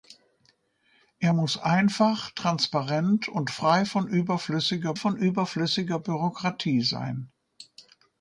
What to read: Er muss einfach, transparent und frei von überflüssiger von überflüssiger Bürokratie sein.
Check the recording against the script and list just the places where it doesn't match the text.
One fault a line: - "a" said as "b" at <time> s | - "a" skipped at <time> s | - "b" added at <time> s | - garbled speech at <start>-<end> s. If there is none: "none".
none